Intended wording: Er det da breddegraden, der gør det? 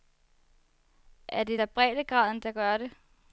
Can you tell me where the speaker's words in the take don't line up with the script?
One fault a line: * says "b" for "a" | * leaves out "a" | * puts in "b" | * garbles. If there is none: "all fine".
all fine